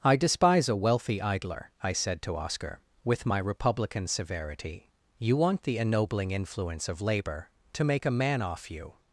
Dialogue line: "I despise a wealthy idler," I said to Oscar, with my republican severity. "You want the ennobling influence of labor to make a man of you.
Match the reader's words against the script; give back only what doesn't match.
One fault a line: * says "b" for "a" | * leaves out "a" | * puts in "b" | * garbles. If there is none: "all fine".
* says "off" for "of"